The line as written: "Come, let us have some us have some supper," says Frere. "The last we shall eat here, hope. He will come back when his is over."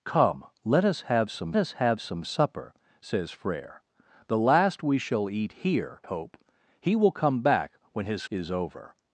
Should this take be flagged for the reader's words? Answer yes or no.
no